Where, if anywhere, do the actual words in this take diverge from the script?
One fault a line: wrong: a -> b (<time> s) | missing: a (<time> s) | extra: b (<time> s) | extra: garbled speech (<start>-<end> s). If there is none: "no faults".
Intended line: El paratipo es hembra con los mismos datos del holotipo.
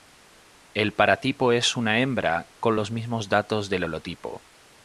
extra: una (1.8 s)